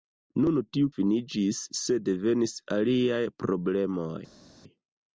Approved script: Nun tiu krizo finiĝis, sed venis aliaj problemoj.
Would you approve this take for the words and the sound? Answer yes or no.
no